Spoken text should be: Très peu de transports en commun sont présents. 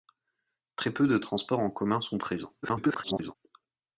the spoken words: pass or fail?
fail